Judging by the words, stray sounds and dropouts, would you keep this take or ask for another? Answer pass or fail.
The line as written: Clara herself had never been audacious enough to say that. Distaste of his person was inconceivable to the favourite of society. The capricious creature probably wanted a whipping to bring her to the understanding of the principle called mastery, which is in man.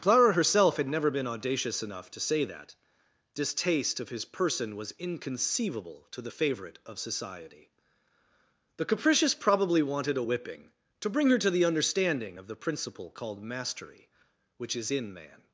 fail